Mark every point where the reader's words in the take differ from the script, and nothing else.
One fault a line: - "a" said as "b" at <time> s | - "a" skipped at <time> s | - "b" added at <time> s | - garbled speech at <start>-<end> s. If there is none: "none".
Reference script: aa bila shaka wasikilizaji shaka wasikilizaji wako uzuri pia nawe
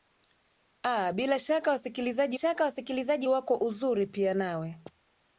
none